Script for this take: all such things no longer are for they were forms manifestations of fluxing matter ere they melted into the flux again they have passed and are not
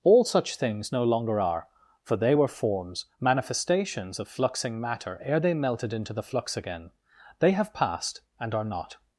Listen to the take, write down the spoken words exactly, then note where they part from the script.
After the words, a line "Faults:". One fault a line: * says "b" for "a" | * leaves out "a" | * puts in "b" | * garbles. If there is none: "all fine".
all such things no longer are for they were forms manifestations of fluxing matter ere they melted into the flux again they have passed and are not
Faults:
all fine